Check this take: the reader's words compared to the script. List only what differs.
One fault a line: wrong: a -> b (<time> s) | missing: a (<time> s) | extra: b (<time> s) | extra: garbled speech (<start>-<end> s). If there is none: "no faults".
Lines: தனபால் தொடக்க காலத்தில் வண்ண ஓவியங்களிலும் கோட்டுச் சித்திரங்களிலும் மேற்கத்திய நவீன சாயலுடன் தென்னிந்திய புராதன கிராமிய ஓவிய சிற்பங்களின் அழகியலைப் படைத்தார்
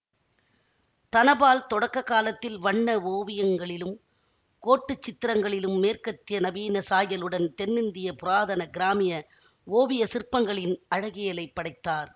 no faults